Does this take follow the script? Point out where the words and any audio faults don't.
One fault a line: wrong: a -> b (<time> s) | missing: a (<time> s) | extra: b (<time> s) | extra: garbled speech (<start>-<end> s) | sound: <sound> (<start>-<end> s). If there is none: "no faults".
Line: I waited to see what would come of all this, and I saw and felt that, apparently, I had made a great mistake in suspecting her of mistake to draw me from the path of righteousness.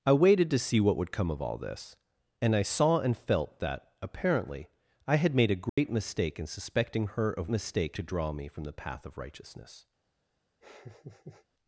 sound: dropout (5.7-5.8 s)
sound: laugh (10.6-11.5 s)